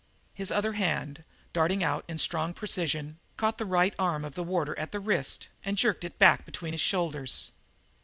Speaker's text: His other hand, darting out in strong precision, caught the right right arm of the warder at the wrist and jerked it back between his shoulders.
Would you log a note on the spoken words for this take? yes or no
yes